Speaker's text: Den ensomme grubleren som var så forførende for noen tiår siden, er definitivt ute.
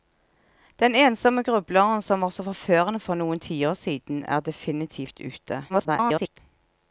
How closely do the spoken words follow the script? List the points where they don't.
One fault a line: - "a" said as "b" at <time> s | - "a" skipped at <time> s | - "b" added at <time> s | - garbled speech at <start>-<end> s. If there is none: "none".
- garbled speech at 5.7-6.4 s